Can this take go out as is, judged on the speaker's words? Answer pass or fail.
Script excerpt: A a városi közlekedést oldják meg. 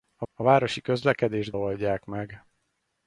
pass